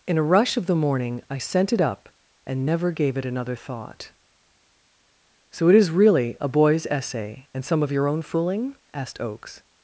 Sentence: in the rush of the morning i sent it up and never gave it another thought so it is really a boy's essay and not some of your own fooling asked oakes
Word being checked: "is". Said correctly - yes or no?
yes